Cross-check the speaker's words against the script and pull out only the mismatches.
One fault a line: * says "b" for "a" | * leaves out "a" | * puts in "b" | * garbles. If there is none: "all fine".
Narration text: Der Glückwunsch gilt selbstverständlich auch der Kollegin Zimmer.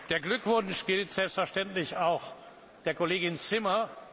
all fine